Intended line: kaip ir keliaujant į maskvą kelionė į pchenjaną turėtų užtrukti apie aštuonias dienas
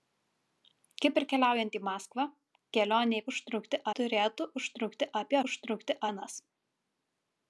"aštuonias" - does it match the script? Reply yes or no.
no